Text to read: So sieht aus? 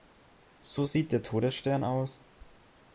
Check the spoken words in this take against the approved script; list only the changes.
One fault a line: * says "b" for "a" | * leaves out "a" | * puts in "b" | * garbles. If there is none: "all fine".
* puts in "der Todesstern"